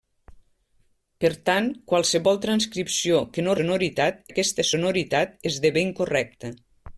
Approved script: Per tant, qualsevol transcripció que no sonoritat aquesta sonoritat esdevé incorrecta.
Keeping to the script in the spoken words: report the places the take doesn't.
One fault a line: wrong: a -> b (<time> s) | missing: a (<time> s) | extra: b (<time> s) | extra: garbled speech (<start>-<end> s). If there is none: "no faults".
no faults